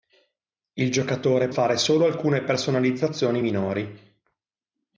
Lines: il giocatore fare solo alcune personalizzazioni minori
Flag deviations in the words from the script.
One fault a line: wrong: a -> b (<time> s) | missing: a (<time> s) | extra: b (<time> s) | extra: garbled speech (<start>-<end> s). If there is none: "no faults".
no faults